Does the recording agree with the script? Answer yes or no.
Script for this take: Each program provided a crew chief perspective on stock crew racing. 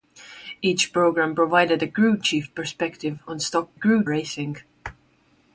yes